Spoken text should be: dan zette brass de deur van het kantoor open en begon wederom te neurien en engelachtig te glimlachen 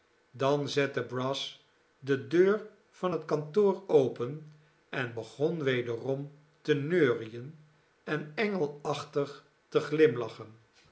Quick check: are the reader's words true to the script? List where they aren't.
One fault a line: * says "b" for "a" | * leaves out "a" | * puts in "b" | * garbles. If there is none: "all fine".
all fine